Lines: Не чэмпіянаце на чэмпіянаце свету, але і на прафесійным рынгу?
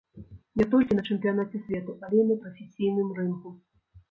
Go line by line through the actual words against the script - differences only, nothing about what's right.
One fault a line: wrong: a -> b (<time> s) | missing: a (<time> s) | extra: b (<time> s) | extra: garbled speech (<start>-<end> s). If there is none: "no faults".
wrong: чэмпіянаце -> толькі (0.7 s)